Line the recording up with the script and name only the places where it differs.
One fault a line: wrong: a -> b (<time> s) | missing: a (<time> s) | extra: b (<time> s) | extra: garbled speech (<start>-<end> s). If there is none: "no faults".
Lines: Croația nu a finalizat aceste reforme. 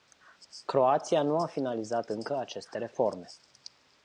extra: încă (2.1 s)